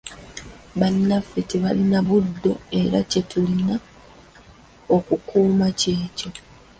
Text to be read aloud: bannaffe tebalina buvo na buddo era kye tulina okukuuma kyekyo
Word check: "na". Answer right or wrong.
wrong